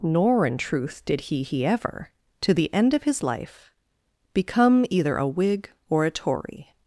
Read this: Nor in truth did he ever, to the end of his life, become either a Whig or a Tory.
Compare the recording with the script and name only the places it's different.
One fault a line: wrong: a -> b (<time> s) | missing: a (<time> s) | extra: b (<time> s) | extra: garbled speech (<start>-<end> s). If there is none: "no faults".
extra: he (1.4 s)